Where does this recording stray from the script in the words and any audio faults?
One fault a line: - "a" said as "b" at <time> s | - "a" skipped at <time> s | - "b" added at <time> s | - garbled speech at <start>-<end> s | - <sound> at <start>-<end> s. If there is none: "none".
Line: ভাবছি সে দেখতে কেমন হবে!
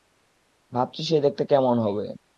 none